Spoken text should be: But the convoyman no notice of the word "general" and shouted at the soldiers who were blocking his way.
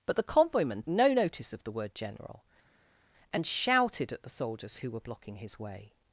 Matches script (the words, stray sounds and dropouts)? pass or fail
pass